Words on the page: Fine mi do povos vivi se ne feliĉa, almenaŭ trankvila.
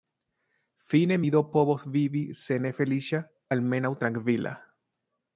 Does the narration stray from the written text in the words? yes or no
no